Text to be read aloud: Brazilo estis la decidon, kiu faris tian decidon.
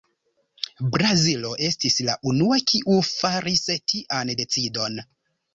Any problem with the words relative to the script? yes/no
yes